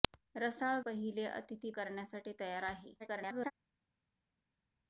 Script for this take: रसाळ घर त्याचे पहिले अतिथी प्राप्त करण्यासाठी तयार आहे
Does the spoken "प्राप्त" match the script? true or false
false